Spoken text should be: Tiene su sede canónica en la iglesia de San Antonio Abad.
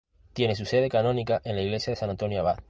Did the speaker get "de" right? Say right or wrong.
right